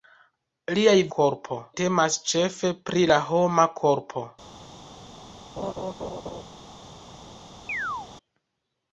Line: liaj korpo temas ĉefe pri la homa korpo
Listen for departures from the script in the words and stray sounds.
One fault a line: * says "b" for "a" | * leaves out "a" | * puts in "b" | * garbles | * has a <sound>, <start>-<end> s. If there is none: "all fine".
* has a laugh, 5.6-6.4 s
* has a chirp, 7.7-8.1 s